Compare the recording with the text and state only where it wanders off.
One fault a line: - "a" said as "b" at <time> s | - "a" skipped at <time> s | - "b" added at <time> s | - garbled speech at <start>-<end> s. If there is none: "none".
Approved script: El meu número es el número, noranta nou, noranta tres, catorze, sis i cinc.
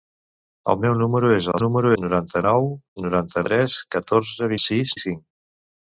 none